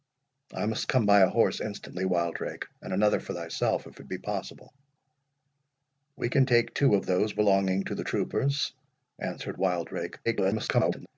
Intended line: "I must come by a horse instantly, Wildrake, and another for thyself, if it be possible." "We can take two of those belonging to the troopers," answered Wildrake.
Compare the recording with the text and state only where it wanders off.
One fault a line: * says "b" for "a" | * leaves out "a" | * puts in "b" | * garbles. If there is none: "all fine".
* garbles